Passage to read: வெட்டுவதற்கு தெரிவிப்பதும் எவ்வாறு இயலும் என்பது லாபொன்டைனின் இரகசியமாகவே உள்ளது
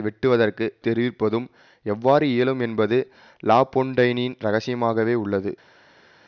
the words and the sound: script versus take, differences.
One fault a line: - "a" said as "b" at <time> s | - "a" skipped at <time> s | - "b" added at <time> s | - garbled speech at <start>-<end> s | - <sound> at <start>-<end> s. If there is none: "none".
none